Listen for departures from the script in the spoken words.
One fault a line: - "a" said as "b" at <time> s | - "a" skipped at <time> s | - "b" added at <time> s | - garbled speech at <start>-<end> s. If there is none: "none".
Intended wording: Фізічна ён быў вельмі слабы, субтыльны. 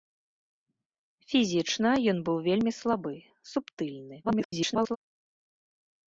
- garbled speech at 4.2-5.0 s